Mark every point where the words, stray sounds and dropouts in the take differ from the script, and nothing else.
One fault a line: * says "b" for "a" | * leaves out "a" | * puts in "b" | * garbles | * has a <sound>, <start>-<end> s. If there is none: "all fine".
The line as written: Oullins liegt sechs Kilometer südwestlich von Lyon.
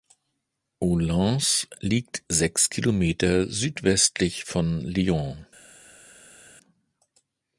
all fine